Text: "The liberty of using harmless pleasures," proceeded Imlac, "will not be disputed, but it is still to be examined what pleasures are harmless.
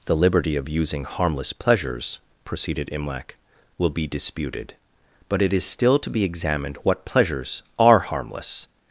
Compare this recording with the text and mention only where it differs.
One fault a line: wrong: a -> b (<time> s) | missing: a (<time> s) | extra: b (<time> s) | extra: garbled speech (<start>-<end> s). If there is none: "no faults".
missing: not (3.9 s)